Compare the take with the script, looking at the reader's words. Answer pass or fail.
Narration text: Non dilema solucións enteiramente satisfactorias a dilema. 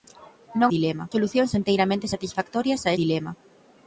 pass